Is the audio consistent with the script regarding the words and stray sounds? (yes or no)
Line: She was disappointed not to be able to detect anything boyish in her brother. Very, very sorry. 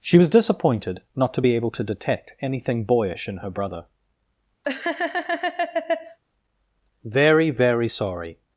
no